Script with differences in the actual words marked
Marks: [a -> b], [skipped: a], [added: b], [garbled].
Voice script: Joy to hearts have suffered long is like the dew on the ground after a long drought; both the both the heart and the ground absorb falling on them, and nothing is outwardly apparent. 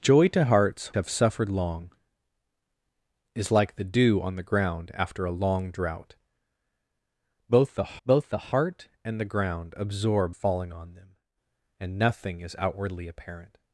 Joy to hearts have suffered long is like the dew on the ground after a long drought; both the both the heart and the ground absorb falling on them, and nothing is outwardly apparent.